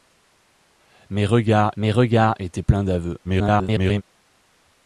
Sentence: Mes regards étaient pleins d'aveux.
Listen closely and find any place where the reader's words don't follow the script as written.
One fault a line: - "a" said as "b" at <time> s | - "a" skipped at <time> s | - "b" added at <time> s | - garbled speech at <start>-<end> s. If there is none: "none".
- "mes regards" added at 1.8 s
- garbled speech at 3.2-4.0 s